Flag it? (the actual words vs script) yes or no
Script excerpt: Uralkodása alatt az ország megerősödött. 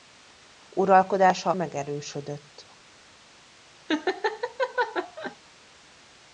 yes